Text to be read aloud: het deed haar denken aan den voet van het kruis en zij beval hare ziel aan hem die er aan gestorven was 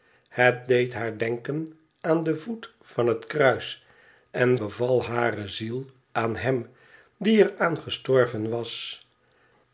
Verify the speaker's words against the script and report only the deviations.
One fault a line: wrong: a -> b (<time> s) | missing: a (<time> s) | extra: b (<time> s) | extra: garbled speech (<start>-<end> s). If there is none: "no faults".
missing: zij (4.6 s)